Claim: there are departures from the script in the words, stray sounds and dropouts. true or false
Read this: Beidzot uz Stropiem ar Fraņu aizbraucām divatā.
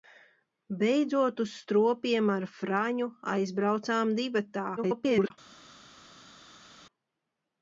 true